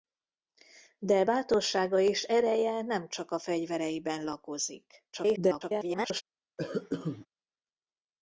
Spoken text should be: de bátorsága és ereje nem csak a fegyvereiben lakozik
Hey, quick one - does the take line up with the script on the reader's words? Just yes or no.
no